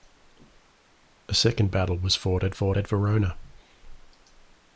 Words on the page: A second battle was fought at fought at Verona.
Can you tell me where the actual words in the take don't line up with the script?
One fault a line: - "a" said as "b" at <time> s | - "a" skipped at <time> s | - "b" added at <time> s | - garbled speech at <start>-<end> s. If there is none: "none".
none